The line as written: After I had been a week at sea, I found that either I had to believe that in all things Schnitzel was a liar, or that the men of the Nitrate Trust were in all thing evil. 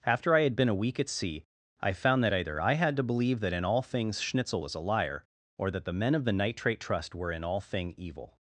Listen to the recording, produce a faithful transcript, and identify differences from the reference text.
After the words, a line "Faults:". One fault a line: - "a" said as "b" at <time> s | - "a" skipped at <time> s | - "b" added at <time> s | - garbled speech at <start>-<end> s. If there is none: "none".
After I had been a week at sea, I found that either I had to believe that in all things Schnitzel was a liar, or that the men of the Nitrate Trust were in all thing evil.
Faults:
none